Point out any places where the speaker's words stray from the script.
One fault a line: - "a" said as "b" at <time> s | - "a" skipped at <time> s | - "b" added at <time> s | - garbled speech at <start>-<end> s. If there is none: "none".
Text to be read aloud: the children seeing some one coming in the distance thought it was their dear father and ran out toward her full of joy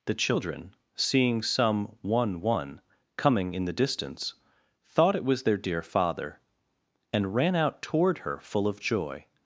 - "one" added at 2.4 s